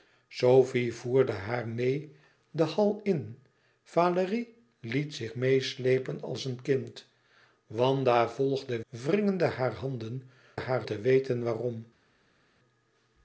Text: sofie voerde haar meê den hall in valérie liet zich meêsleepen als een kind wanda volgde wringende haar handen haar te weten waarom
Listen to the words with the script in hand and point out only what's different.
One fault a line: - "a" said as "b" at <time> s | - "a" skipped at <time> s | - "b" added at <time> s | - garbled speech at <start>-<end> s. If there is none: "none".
none